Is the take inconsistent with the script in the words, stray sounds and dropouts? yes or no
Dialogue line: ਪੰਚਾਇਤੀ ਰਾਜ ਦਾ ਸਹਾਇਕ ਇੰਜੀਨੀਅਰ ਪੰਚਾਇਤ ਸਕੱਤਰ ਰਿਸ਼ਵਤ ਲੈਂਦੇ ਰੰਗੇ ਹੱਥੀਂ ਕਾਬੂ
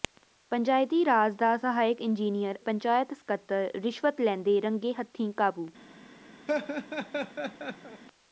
yes